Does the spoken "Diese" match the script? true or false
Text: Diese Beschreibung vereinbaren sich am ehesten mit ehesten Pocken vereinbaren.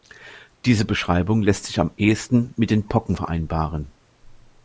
true